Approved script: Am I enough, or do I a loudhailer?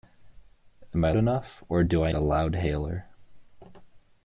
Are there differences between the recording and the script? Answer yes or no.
no